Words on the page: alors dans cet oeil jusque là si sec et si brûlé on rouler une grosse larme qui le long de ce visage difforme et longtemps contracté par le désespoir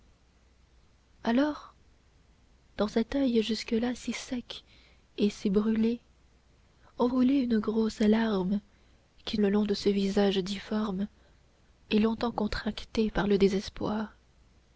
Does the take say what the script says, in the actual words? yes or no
yes